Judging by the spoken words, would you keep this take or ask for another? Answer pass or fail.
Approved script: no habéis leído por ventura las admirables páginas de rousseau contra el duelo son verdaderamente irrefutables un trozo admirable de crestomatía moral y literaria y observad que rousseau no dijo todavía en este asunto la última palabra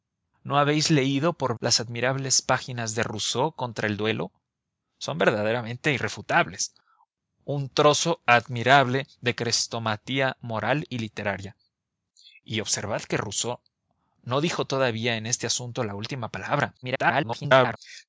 fail